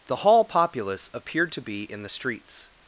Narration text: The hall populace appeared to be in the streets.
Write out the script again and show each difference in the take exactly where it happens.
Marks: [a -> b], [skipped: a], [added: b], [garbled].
The hall populace appeared to be in the streets.